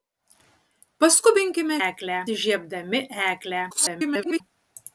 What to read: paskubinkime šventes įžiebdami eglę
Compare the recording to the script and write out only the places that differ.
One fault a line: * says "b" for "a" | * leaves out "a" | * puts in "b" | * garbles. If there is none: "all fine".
* says "eglę" for "šventes"
* garbles